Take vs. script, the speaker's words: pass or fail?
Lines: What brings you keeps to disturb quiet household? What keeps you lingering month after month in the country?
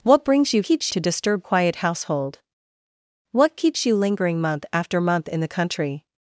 pass